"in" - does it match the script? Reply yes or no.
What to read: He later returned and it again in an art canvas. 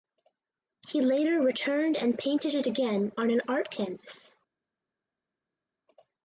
no